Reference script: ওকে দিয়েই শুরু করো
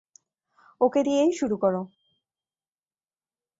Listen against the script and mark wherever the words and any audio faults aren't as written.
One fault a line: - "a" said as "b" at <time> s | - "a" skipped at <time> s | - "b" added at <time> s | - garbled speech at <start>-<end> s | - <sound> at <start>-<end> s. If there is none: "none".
none